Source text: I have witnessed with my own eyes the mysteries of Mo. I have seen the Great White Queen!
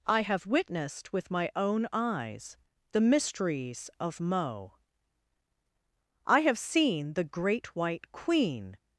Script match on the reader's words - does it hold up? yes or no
yes